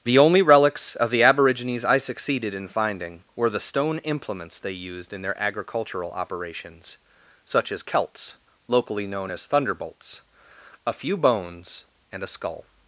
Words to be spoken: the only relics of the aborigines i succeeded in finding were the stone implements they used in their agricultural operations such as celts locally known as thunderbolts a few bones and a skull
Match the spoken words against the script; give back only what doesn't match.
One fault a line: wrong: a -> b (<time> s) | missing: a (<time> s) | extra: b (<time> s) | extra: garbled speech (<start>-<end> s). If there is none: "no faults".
no faults